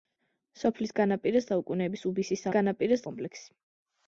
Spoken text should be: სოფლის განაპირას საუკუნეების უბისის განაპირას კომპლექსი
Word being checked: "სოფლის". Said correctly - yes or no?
yes